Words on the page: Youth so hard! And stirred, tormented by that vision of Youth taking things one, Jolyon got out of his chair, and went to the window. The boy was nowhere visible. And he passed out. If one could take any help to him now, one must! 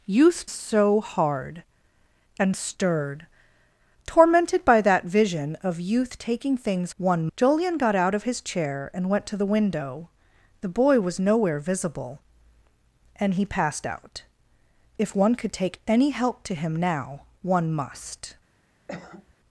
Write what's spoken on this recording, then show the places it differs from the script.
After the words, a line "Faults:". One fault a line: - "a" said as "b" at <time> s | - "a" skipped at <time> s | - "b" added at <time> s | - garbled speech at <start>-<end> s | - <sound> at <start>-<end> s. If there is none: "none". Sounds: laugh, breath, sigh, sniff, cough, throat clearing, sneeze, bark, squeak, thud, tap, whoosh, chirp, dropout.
Youth so hard! And stirred, tormented by that vision of Youth taking things one, Jolyon got out of his chair, and went to the window. The boy was nowhere visible. And he passed out. If one could take any help to him now, one must!
Faults:
- cough at 18.9-19.3 s